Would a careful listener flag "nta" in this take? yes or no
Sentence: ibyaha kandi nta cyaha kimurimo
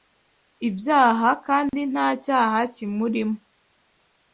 no